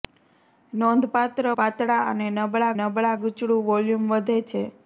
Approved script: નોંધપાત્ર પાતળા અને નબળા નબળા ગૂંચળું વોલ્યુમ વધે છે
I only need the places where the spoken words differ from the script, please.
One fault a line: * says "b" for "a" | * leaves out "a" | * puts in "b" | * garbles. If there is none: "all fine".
all fine